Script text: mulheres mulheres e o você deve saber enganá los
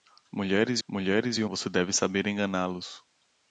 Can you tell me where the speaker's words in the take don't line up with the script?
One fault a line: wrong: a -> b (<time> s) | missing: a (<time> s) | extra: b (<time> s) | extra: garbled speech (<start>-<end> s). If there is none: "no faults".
no faults